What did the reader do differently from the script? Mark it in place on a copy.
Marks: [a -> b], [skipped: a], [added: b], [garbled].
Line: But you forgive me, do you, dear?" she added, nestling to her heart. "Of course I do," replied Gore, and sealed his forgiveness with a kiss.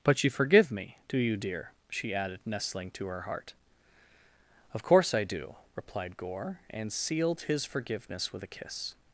But you forgive me, do you, dear?" she added, nestling to her heart. "Of course I do," replied Gore, and sealed his forgiveness with a kiss.